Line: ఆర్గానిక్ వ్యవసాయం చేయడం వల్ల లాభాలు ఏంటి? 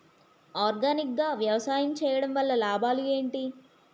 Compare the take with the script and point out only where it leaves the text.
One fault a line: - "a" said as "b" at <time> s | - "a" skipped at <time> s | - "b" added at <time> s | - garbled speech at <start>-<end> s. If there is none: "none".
- "గా" added at 1.2 s